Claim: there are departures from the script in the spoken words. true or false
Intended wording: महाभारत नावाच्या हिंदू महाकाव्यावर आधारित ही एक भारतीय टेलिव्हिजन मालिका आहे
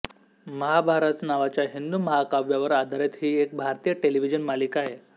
false